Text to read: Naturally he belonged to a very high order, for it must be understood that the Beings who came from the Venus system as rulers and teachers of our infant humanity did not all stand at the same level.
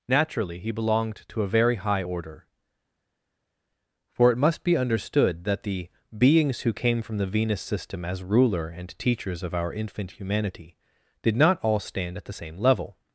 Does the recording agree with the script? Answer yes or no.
no